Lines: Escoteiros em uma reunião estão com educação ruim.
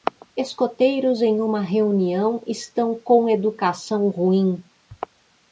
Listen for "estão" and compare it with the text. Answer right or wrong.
right